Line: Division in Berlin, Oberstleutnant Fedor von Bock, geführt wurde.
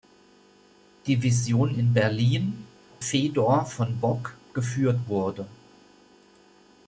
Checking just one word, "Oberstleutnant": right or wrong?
wrong